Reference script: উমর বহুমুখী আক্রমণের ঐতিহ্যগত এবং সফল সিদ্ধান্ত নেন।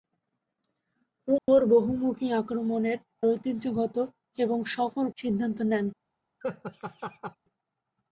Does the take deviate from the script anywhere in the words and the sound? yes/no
yes